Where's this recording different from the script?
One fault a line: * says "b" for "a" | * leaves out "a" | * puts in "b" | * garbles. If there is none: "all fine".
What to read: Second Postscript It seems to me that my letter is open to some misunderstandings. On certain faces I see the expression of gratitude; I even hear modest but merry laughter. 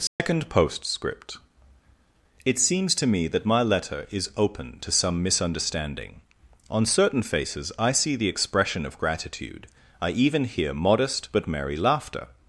* says "misunderstanding" for "misunderstandings"